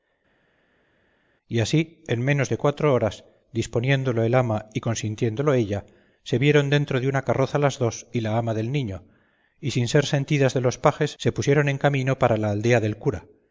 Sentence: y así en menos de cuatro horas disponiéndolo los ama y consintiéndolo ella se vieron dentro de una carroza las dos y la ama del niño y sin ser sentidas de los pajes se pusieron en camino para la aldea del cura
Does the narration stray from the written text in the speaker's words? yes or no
yes